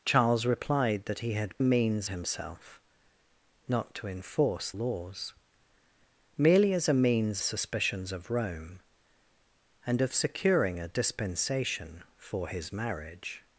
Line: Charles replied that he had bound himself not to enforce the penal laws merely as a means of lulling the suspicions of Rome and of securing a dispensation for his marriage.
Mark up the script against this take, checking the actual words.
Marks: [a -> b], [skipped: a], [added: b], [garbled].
Charles replied that he had [bound -> means] himself not to enforce [skipped: the penal] laws merely as a means [skipped: of lulling the] suspicions of Rome and of securing a dispensation for his marriage.